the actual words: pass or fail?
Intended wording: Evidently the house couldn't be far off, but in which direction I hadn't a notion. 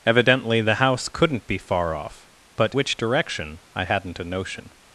fail